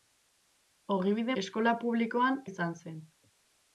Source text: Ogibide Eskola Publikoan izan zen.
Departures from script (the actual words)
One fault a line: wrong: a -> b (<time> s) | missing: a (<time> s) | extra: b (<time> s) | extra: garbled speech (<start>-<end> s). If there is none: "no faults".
no faults